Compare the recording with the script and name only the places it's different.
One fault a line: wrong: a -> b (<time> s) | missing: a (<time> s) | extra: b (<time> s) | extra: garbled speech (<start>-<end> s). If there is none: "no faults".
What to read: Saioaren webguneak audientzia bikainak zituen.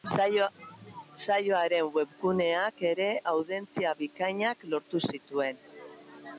extra: ere (2.9 s)
extra: lortu (4.8 s)